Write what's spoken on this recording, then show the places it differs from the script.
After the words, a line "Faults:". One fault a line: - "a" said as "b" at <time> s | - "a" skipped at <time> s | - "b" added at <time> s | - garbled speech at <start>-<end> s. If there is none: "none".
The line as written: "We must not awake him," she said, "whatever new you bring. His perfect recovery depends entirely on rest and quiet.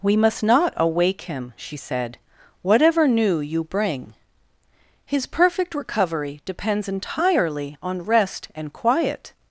"We must not awake him," she said, "whatever new you bring. His perfect recovery depends entirely on rest and quiet.
Faults:
none